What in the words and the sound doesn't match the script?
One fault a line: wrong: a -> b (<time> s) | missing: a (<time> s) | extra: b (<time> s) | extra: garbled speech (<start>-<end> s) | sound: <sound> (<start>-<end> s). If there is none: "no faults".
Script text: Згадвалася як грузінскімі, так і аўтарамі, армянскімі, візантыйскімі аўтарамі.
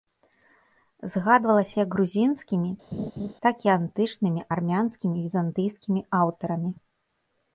sound: laugh (2.9-3.3 s)
wrong: аўтарамі -> антычнымі (3.8 s)